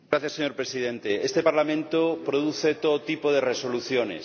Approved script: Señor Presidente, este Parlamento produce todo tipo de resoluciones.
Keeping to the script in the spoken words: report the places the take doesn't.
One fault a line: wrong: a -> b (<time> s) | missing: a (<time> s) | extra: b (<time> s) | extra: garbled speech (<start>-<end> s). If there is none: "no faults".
no faults